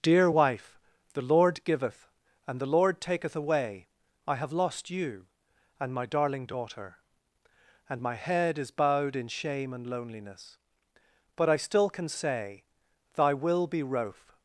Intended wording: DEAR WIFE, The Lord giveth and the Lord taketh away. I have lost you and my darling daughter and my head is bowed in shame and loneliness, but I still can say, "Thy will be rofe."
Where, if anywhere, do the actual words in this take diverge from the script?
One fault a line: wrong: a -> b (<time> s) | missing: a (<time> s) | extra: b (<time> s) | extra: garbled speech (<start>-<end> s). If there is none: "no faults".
no faults